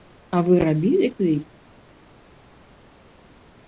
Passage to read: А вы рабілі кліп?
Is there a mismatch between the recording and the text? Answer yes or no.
no